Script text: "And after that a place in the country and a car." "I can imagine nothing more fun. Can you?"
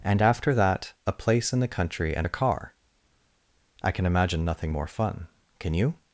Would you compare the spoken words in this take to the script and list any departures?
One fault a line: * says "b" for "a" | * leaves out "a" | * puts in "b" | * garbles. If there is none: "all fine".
all fine